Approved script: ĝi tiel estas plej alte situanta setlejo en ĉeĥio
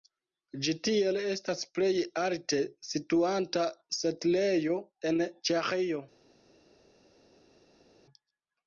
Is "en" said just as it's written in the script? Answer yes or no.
yes